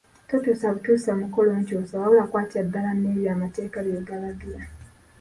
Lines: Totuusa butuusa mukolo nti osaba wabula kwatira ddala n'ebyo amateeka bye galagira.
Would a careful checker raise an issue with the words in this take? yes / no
no